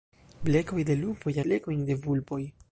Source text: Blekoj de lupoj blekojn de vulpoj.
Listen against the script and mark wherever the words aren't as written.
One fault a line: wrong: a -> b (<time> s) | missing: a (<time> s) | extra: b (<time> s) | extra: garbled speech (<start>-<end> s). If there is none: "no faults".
no faults